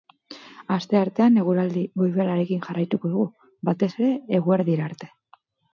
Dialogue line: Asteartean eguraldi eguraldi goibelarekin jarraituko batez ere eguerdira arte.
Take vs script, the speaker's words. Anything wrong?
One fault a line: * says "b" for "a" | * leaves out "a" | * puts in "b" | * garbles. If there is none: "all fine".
* leaves out "eguraldi"
* puts in "dugu"